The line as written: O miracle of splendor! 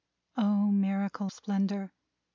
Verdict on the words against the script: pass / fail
fail